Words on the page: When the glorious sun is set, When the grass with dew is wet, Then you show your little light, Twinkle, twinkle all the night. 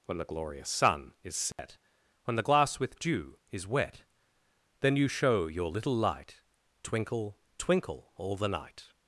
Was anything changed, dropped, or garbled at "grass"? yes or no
yes